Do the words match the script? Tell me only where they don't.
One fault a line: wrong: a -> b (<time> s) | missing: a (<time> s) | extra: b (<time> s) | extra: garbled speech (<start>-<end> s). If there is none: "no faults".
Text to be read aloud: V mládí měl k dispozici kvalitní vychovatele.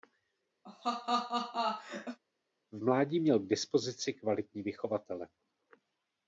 no faults